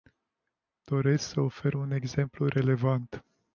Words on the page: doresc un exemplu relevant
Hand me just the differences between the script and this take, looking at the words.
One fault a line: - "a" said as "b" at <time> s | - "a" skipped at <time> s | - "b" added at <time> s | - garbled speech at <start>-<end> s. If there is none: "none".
- "să ofer" added at 1.3 s